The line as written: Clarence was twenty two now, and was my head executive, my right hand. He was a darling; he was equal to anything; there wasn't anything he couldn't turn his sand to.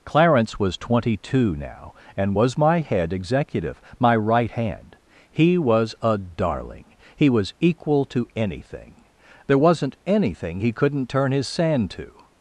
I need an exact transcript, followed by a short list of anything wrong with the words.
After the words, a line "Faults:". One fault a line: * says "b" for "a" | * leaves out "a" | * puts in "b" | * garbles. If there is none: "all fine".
Clarence was twenty two now, and was my head executive, my right hand. He was a darling; he was equal to anything; there wasn't anything he couldn't turn his sand to.
Faults:
all fine